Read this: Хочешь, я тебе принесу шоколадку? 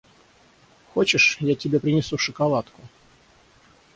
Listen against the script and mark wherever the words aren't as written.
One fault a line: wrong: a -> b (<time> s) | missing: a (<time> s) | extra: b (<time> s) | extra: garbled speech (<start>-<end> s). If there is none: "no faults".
no faults